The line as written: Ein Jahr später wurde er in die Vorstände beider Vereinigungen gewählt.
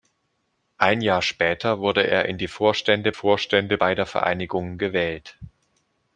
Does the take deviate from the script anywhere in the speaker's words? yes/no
yes